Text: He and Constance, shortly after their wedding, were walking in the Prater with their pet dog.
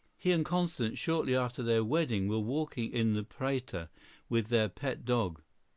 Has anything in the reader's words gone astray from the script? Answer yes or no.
no